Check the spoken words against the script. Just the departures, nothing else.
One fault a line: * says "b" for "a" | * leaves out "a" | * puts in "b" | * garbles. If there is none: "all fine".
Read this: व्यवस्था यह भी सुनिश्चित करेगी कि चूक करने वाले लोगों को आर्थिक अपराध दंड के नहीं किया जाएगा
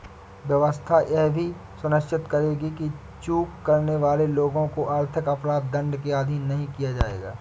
* puts in "अधीन"